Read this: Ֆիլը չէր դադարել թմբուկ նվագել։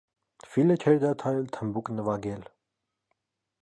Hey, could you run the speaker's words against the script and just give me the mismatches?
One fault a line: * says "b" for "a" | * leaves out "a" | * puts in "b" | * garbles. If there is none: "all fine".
all fine